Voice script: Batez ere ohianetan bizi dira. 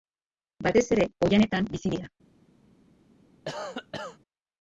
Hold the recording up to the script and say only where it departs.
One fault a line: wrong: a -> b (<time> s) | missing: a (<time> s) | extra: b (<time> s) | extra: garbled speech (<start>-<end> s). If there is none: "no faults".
no faults